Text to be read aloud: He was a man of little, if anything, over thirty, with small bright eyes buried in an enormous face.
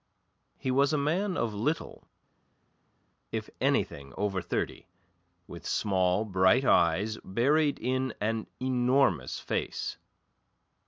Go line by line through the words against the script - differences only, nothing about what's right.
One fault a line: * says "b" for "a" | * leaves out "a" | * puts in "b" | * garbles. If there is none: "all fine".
all fine